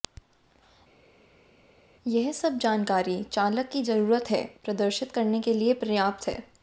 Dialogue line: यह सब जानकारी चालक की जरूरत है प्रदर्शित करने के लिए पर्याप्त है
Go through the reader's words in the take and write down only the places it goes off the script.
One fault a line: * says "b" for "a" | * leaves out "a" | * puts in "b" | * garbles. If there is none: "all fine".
all fine